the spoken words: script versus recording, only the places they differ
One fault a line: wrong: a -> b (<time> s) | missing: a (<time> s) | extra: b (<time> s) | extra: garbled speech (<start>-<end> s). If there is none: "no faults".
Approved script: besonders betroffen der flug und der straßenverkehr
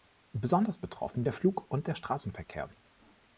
no faults